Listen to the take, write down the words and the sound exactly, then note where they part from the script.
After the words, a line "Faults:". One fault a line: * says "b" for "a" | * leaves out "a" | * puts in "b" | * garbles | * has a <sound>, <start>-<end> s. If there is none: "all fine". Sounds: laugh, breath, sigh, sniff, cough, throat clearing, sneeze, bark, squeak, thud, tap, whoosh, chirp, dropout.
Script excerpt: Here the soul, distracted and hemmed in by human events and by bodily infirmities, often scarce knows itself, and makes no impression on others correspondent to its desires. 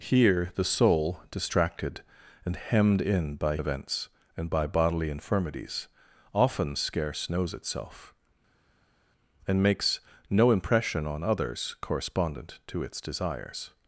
Here the soul, distracted and hemmed in by events and by bodily infirmities, often scarce knows itself, and makes no impression on others correspondent to its desires.
Faults:
* leaves out "human"